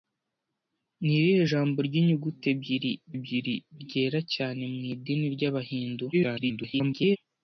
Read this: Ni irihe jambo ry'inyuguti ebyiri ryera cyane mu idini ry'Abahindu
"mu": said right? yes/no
yes